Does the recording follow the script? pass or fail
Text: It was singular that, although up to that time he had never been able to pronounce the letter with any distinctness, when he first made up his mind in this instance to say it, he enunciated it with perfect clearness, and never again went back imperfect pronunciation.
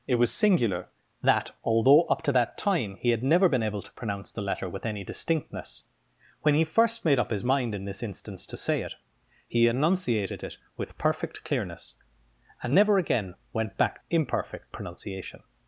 pass